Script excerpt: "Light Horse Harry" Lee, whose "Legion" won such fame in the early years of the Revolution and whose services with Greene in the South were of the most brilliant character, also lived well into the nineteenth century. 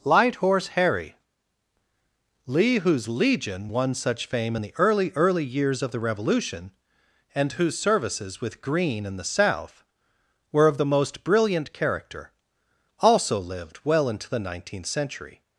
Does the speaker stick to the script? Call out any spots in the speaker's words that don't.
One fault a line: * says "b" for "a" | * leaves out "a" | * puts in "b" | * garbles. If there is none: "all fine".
* puts in "early"